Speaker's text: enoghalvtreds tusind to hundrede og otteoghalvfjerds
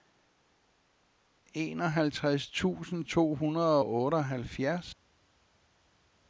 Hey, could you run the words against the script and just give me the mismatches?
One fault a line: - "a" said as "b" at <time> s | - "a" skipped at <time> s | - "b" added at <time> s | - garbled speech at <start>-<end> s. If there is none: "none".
none